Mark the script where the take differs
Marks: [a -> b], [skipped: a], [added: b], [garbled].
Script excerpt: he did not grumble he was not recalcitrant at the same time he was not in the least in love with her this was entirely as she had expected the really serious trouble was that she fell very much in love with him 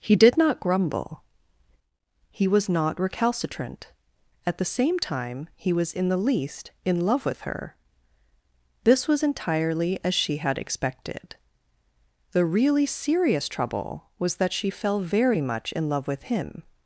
he did not grumble he was not recalcitrant at the same time he was [skipped: not] in the least in love with her this was entirely as she had expected the really serious trouble was that she fell very much in love with him